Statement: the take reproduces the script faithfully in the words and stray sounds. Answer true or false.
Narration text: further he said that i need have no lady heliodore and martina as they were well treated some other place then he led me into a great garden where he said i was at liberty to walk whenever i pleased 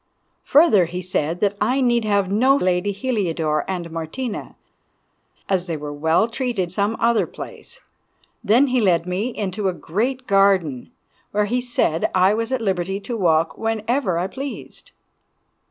true